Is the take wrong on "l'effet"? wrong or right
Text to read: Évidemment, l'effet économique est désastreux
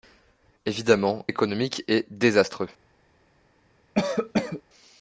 wrong